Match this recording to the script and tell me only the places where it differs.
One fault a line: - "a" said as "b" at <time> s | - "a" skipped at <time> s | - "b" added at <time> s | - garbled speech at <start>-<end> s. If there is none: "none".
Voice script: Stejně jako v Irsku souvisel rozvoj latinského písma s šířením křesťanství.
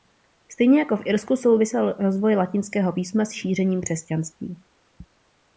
none